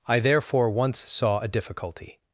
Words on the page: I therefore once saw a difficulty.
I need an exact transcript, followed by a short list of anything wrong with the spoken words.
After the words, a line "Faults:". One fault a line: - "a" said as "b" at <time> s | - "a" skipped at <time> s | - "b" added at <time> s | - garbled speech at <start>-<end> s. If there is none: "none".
I therefore once saw a difficulty.
Faults:
none